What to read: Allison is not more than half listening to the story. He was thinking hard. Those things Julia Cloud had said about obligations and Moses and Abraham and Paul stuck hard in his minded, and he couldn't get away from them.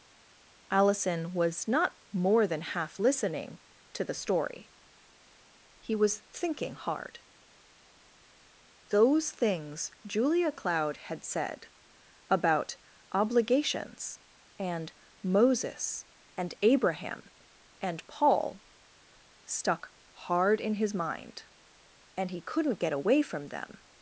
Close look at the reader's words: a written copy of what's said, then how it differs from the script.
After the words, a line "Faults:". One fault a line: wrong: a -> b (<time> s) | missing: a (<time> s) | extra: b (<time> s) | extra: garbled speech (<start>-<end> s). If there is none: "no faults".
Allison was not more than half listening to the story. He was thinking hard. Those things Julia Cloud had said about obligations and Moses and Abraham and Paul stuck hard in his mind, and he couldn't get away from them.
Faults:
wrong: is -> was (1.3 s)
wrong: minded -> mind (20.9 s)